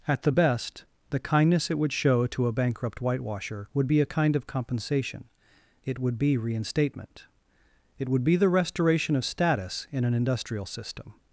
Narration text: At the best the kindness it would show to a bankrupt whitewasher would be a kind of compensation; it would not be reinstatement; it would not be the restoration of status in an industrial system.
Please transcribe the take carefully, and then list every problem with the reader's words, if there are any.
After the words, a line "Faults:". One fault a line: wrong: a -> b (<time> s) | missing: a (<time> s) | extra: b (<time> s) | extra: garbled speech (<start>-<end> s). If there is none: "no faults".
At the best the kindness it would show to a bankrupt whitewasher would be a kind of compensation; it would be reinstatement; it would be the restoration of status in an industrial system.
Faults:
missing: not (6.2 s)
missing: not (8.2 s)